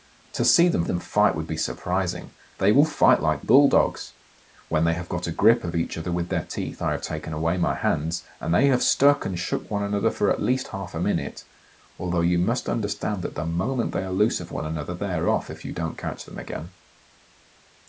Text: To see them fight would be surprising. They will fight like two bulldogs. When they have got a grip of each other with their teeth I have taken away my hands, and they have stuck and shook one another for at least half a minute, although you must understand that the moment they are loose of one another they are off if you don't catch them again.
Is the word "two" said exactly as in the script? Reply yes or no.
no